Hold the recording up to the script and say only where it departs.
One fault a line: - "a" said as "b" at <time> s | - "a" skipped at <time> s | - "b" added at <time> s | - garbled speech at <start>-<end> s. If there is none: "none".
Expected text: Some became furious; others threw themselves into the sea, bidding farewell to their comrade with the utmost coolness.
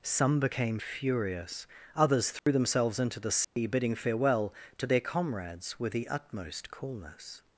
- "comrade" said as "comrades" at 5.0 s